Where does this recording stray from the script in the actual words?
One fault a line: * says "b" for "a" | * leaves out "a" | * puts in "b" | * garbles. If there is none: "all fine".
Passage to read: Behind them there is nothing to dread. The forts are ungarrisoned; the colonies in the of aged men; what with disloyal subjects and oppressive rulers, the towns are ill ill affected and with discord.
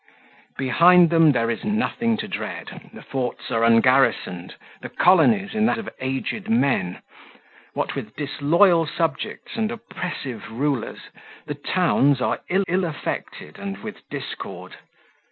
all fine